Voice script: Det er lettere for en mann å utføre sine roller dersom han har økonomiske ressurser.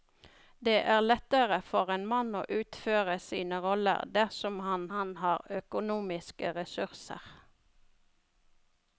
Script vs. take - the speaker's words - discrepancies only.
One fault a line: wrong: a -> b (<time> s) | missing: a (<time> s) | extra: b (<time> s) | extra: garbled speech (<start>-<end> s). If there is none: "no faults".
extra: han (5.0 s)